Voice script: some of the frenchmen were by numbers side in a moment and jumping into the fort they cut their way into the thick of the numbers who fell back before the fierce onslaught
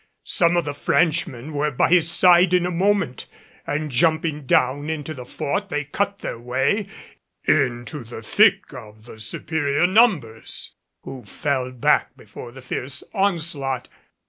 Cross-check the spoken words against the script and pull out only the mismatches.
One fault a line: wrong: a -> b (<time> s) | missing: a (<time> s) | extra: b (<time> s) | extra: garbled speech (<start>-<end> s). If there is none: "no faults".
wrong: numbers -> his (1.9 s)
extra: down (4.5 s)
extra: superior (9.2 s)